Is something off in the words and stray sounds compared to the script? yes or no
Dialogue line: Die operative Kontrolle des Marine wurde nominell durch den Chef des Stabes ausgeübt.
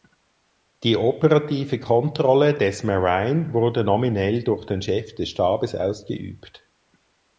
no